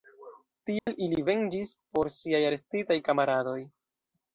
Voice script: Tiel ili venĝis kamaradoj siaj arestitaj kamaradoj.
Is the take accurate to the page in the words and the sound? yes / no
no